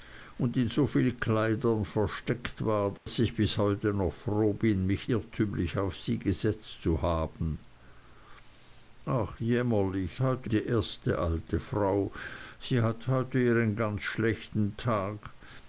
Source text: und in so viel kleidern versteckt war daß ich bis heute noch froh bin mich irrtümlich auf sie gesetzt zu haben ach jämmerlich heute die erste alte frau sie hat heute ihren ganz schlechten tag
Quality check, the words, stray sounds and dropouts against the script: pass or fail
fail